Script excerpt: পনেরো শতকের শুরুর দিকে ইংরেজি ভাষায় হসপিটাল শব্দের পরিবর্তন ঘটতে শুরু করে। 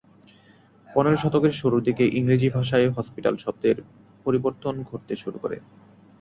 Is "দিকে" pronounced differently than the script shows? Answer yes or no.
no